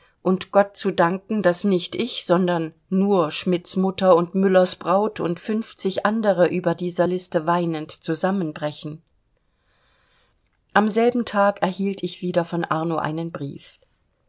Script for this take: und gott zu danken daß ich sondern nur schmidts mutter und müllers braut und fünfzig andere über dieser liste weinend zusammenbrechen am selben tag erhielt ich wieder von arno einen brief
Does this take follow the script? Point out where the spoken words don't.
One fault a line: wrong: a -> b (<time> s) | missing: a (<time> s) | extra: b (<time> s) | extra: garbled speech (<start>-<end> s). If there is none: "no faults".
extra: nicht (1.6 s)